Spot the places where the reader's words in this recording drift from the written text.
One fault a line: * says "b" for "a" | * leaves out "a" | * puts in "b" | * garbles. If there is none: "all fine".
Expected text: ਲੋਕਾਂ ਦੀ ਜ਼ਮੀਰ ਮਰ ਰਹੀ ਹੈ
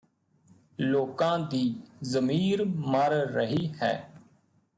all fine